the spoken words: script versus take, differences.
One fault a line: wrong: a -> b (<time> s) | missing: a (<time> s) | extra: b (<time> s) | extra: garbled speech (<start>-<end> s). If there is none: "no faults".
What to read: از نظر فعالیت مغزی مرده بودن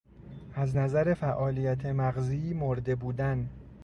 no faults